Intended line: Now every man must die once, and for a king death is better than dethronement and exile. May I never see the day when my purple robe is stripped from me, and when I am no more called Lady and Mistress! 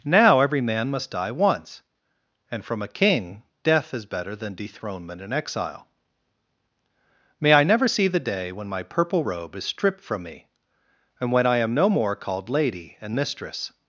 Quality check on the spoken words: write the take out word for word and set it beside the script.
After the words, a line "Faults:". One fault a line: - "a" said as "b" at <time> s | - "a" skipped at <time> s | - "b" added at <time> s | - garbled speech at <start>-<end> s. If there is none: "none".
Now every man must die once, and from a king death is better than dethronement and exile. May I never see the day when my purple robe is stripped from me, and when I am no more called Lady and Mistress!
Faults:
- "for" said as "from" at 2.6 s